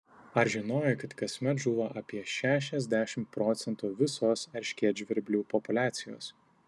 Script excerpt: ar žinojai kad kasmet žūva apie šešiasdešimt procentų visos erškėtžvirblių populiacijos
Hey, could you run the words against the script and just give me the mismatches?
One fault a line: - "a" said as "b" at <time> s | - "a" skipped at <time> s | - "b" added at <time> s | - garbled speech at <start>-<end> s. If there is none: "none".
none